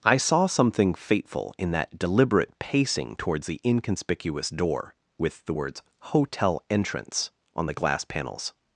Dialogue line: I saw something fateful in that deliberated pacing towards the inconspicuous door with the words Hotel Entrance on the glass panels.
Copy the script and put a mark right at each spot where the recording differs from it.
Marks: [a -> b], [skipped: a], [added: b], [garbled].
I saw something fateful in that [deliberated -> deliberate] pacing towards the inconspicuous door with the words Hotel Entrance on the glass panels.